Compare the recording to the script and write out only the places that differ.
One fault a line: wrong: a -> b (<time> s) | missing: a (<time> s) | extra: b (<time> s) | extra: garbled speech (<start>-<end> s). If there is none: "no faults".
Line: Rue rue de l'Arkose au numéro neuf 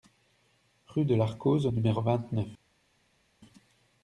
missing: rue (1.1 s)
extra: vingt (2.0 s)